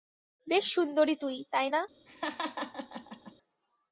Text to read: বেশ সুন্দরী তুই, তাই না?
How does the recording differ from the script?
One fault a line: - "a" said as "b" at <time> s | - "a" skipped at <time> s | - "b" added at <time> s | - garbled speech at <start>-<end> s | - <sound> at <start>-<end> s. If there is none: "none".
- laugh at 2.1-3.3 s